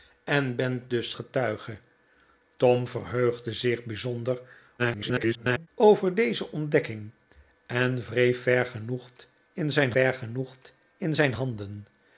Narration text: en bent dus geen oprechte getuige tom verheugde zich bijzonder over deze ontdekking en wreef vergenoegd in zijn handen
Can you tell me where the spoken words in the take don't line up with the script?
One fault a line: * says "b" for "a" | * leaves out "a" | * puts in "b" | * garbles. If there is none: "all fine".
* leaves out "geen oprechte"
* garbles
* puts in "vergenoegd in zijn"